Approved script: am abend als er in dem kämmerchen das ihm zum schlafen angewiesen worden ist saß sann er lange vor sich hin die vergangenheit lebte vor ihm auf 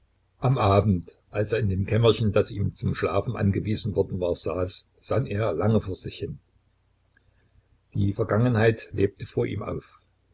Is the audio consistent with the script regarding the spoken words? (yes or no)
no